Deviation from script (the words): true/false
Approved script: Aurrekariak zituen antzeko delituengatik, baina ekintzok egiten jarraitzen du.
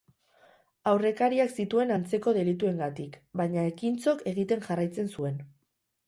true